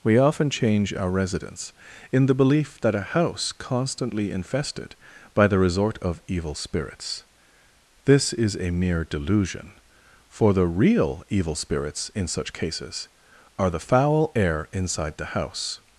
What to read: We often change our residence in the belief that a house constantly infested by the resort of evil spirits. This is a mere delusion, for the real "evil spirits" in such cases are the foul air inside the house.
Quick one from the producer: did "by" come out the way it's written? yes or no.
yes